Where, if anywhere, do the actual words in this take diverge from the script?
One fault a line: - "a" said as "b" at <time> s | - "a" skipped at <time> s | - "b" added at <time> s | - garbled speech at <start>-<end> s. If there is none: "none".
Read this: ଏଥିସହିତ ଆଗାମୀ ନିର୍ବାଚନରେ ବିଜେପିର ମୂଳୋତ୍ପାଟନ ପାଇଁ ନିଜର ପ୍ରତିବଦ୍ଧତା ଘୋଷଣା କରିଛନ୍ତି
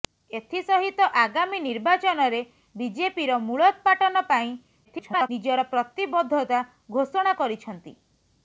- garbled speech at 4.8-5.3 s